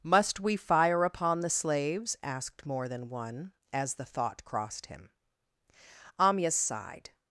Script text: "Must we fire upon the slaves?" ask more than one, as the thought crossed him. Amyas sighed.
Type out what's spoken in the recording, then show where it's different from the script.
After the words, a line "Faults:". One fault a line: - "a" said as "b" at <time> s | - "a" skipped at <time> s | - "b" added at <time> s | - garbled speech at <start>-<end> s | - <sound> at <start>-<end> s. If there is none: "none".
"Must we fire upon the slaves?" asked more than one, as the thought crossed him. Amyas sighed.
Faults:
- "ask" said as "asked" at 2.2 s